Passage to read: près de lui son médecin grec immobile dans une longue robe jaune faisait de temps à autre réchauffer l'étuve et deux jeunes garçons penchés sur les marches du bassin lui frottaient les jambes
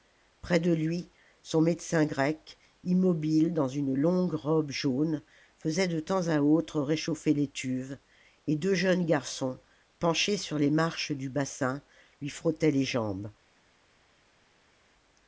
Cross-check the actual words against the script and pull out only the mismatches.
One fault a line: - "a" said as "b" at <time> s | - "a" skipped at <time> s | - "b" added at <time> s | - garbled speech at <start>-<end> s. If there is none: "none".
none